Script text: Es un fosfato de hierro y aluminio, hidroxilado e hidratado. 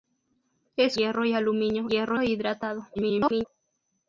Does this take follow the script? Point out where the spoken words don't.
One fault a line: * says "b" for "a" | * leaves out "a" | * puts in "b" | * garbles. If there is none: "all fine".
* leaves out "un fosfato de"
* says "hierro" for "hidroxilado"
* garbles